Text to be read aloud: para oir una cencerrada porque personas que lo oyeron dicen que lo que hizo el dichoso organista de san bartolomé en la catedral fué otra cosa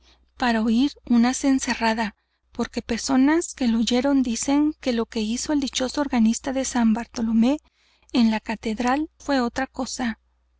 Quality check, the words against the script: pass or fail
pass